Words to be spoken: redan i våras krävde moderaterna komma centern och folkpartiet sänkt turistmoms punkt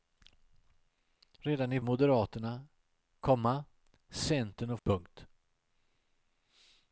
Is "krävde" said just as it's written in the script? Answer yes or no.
no